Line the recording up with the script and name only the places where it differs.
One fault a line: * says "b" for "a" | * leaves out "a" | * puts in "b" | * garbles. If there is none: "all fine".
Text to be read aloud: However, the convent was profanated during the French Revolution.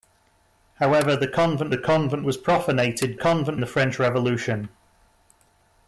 * puts in "the convent"
* says "convent" for "during"